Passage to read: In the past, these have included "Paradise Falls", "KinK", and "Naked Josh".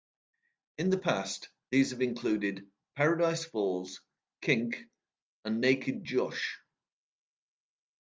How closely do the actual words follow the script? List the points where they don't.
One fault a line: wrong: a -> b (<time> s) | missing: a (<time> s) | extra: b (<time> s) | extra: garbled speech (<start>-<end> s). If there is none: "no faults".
no faults